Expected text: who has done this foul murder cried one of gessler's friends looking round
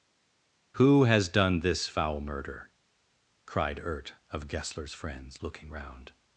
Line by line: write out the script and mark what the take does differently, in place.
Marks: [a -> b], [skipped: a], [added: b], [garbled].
who has done this foul murder cried [one -> ert] of gessler's friends looking round